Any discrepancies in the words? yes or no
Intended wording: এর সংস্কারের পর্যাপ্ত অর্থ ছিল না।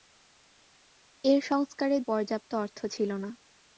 no